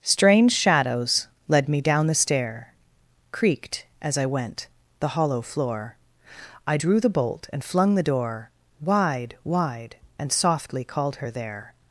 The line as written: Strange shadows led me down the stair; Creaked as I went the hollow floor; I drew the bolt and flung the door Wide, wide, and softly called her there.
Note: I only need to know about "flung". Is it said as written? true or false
true